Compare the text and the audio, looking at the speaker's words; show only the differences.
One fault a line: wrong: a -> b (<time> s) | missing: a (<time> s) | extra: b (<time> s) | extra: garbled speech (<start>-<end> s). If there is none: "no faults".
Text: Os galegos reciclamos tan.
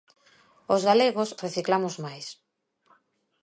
wrong: tan -> máis (2.0 s)